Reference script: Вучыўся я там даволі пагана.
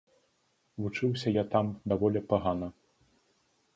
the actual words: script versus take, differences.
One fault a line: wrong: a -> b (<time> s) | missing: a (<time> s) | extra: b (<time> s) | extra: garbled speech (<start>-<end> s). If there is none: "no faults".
no faults